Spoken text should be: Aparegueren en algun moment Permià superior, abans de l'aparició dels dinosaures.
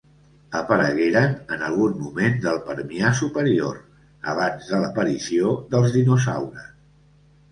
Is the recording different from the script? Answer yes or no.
yes